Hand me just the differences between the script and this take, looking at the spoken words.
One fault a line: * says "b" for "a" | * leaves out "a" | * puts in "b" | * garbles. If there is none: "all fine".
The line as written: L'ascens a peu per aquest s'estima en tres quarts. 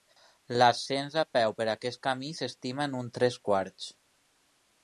* puts in "camí"
* puts in "uns"